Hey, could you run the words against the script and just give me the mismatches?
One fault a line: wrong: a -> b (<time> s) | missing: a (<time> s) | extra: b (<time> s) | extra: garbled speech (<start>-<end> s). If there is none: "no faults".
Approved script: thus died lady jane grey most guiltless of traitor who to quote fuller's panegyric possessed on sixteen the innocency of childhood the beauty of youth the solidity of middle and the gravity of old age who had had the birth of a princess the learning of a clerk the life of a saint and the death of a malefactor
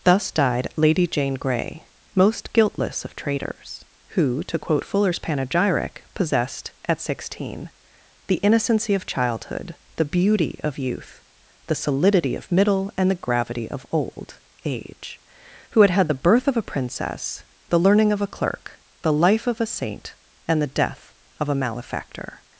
wrong: traitor -> traitors (3.1 s)
wrong: on -> at (6.9 s)